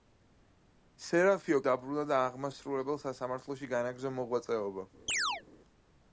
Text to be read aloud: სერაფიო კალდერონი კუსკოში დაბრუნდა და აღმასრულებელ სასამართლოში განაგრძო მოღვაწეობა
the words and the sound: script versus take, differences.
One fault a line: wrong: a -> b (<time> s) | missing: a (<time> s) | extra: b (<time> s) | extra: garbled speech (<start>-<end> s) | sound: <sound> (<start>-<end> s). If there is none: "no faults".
missing: კალდერონი კუსკოში (1.6 s)
sound: chirp (5.1-5.4 s)